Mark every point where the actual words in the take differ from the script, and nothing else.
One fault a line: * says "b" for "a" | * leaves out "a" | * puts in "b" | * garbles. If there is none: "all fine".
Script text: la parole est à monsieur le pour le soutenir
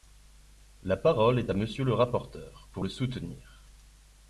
* puts in "rapporteur"